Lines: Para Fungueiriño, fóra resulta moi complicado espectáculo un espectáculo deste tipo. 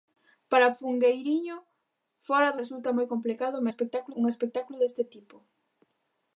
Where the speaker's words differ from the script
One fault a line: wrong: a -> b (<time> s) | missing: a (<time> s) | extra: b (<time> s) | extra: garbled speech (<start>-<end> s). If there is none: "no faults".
no faults